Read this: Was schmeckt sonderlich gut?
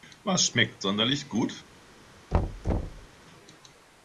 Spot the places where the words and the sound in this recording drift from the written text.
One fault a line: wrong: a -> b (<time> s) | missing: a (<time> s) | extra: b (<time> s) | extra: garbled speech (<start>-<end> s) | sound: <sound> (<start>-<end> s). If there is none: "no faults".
sound: thud (2.3-3.1 s)